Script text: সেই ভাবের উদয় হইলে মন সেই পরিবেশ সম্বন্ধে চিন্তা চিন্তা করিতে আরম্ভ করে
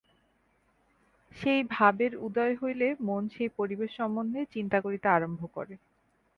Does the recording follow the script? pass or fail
fail